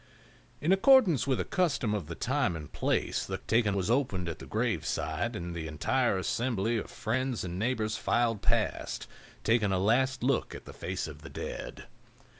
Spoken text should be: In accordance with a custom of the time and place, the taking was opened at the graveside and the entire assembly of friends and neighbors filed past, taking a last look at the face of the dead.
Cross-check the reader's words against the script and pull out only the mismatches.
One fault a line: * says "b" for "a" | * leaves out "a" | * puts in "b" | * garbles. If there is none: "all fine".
all fine